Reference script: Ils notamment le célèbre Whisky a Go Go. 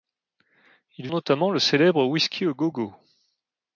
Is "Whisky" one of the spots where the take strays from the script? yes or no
no